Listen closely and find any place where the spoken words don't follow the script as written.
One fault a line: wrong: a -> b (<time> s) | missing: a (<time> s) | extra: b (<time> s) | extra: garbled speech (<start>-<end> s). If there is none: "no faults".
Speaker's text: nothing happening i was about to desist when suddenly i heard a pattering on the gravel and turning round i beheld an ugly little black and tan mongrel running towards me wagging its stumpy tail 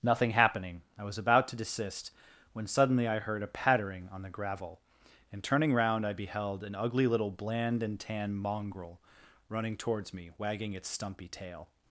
wrong: black -> bland (7.3 s)